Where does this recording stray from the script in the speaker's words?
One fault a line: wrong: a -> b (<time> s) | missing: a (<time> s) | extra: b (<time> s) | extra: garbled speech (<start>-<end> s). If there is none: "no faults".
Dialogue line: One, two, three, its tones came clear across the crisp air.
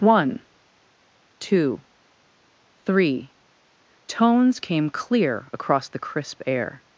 missing: its (3.3 s)